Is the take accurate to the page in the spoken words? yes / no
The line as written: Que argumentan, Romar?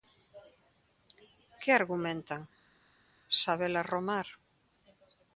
no